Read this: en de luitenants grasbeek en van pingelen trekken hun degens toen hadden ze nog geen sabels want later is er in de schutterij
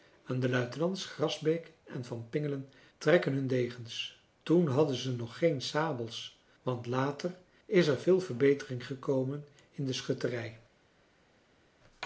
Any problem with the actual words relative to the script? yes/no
yes